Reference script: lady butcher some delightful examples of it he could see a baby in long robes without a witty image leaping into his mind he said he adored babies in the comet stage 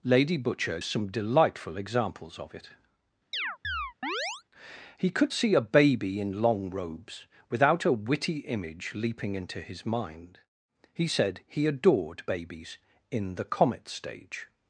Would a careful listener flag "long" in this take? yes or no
no